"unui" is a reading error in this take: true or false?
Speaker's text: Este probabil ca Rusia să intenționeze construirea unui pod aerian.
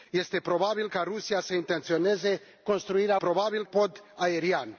true